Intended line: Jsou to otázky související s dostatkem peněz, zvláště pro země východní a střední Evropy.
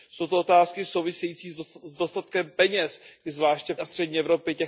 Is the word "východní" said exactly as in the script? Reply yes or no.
no